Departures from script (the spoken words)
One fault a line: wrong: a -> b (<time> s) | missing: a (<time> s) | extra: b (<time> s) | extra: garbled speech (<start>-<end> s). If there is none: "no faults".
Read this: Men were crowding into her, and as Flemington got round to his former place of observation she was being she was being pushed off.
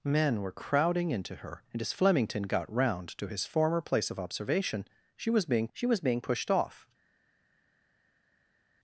no faults